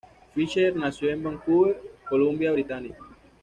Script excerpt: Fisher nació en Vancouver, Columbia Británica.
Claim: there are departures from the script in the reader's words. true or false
false